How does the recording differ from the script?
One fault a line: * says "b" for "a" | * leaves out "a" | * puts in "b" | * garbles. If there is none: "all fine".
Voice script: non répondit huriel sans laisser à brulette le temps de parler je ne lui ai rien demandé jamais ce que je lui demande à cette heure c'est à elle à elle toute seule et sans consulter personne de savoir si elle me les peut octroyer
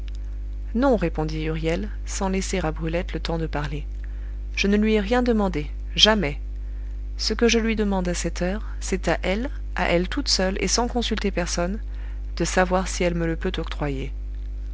* says "le" for "les"